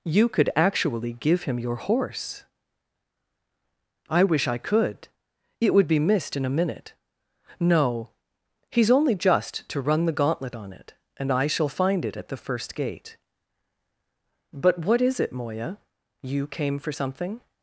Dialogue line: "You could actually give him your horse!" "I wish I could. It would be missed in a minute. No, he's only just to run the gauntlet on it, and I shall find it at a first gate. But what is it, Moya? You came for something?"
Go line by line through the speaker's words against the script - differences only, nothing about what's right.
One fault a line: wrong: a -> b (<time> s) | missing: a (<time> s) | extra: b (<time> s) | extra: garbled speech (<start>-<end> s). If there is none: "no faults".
wrong: a -> the (12.3 s)